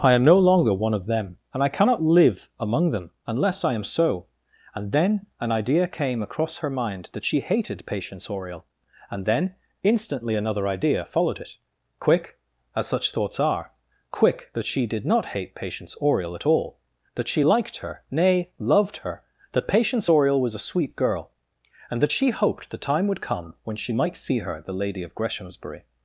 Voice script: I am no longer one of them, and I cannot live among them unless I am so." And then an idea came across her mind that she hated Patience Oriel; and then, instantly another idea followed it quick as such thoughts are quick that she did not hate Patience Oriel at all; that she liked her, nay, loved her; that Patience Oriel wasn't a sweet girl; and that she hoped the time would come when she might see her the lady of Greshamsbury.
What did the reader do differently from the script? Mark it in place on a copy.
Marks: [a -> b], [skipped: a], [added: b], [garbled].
I am no longer one of them, and I cannot live among them unless I am so." And then an idea came across her mind that she hated Patience Oriel; and then, instantly another idea followed it quick as such thoughts are quick that she did not hate Patience Oriel at all; that she liked her, nay, loved her; that Patience Oriel [wasn't -> was] a sweet girl; and that she hoped the time would come when she might see her the lady of Greshamsbury.